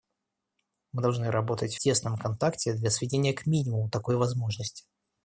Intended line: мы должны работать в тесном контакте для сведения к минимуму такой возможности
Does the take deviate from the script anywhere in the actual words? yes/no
yes